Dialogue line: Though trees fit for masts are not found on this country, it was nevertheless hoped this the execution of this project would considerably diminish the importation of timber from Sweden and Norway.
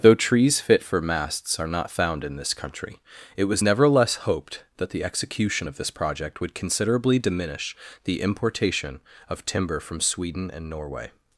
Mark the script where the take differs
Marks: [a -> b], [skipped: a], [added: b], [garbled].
Though trees fit for masts are not found [on -> in] this country, it was nevertheless hoped [this -> that] the execution of this project would considerably diminish the importation of timber from Sweden and Norway.